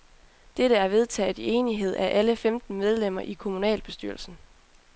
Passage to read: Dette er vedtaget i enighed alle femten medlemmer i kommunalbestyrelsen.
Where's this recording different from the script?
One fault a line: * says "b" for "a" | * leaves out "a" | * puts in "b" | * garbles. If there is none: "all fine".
* puts in "af"